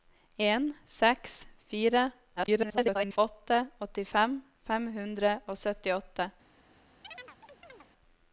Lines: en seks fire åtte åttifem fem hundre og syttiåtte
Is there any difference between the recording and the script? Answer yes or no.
yes